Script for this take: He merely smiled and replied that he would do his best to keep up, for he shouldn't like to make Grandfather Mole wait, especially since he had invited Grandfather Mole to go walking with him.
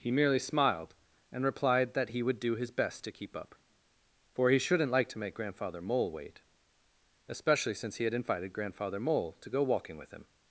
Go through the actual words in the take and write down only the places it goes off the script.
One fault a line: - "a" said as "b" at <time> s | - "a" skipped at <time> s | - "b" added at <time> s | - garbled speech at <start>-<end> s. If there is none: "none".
none